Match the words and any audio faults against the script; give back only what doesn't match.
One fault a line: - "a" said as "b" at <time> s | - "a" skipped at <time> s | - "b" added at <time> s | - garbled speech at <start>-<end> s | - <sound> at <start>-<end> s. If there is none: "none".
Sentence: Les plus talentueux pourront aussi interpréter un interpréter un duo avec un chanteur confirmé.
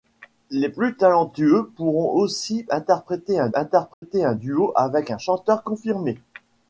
- dropout at 3.9-4.0 s